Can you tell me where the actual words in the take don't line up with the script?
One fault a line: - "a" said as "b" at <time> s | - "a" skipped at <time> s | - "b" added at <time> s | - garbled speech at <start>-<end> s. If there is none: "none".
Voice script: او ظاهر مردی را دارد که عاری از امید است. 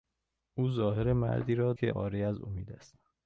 - "دارد" skipped at 1.7 s